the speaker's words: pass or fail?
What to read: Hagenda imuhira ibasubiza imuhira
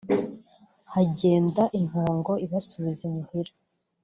fail